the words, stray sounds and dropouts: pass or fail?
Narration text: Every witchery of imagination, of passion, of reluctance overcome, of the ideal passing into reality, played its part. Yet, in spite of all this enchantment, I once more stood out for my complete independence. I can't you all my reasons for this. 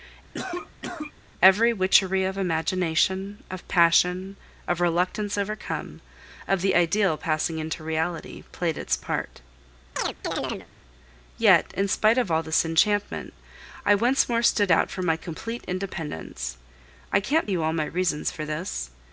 fail